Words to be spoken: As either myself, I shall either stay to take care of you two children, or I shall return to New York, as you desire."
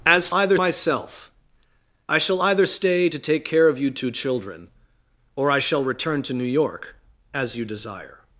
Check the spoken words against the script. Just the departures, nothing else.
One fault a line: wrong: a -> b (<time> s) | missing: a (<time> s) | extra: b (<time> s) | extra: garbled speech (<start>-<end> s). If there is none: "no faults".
no faults